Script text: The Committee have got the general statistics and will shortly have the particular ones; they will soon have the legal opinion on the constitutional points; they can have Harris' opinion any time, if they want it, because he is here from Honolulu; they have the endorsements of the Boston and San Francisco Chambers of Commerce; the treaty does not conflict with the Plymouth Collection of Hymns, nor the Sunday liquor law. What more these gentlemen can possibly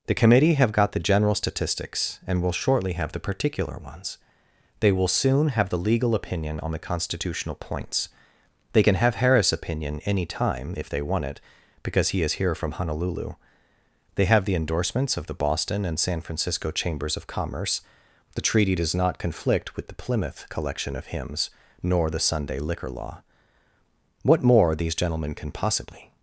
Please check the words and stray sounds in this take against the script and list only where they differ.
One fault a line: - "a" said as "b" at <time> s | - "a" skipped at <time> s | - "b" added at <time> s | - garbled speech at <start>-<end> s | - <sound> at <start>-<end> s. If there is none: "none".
none